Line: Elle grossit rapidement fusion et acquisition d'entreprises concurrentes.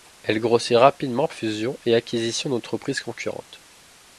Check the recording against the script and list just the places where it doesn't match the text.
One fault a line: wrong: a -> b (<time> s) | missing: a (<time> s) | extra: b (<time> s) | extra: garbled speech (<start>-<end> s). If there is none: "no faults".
no faults